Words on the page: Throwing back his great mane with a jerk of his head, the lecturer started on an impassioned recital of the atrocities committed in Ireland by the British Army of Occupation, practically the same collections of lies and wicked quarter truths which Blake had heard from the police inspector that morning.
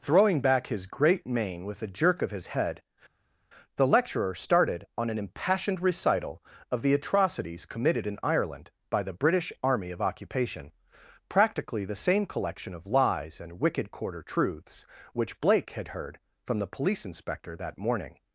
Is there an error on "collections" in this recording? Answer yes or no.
yes